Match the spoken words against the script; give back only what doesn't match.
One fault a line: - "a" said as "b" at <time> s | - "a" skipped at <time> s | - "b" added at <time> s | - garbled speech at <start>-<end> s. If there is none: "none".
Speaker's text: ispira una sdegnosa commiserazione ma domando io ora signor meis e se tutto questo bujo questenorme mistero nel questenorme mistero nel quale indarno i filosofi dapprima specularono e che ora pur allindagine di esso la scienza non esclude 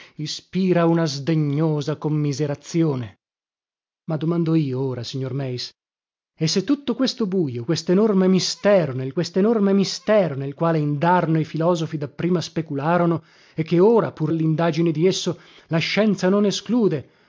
none